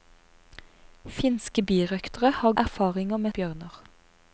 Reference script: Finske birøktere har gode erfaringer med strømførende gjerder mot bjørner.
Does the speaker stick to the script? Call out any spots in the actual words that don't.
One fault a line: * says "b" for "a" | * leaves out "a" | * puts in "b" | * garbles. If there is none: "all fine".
* leaves out "gode"
* leaves out "strømførende gjerder mot"